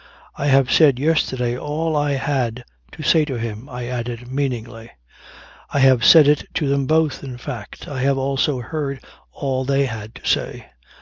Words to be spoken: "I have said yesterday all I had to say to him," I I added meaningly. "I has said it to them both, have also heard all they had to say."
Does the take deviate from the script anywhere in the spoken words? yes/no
yes